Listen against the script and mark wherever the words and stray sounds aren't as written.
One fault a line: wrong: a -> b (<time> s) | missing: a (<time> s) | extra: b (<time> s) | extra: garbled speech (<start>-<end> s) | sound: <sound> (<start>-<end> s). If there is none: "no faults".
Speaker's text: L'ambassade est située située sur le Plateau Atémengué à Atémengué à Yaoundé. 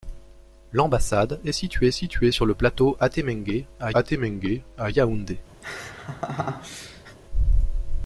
sound: laugh (5.6-7.2 s)